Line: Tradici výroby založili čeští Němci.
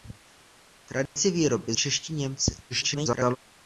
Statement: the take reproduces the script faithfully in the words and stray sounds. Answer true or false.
false